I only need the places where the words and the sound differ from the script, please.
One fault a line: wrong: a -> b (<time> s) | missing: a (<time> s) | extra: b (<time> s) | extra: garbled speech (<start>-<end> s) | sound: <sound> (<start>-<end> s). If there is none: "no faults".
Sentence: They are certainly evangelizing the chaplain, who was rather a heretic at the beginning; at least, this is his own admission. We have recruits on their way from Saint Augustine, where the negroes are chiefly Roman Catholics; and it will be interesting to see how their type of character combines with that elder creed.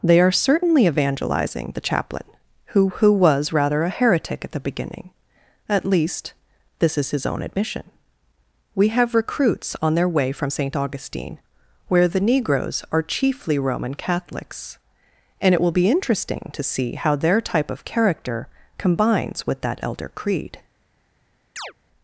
extra: who (2.9 s)
sound: chirp (21.6-21.7 s)